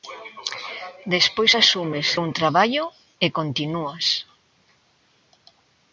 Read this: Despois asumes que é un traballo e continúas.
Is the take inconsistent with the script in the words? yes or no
yes